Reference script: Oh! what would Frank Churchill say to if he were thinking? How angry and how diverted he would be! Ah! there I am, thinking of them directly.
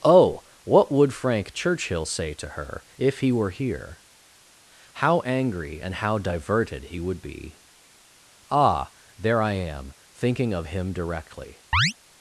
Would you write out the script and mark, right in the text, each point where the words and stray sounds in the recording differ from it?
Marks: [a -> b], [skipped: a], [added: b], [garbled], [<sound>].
Oh! what would Frank Churchill say to [added: her] if he were [thinking? -> here] How angry and how diverted he would be! Ah! there I am, thinking of [them -> him] directly. [chirp]